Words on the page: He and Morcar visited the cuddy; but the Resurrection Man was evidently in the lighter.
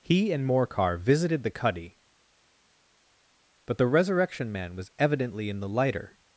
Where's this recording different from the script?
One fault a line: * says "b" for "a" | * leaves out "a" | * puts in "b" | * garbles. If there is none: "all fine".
all fine